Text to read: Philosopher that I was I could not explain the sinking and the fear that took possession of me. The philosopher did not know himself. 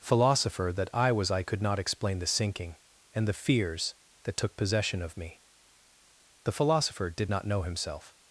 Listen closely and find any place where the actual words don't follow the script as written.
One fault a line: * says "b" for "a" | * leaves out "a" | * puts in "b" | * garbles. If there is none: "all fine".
* says "fears" for "fear"